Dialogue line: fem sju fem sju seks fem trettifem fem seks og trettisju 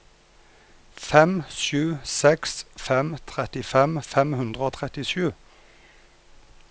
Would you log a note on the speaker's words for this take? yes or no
yes